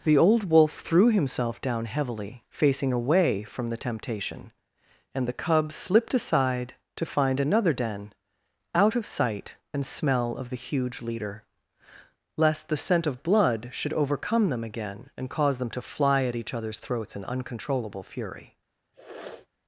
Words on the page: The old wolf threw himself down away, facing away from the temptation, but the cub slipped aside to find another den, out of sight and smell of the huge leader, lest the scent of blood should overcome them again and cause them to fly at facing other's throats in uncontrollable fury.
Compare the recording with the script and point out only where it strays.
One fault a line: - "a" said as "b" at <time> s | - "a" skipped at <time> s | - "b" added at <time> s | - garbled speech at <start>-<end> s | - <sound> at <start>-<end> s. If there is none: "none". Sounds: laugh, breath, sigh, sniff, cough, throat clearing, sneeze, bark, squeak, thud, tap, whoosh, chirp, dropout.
- "away" said as "heavily" at 1.9 s
- "but" said as "and" at 5.1 s
- "facing" said as "each" at 16.4 s
- sniff at 18.9-19.5 s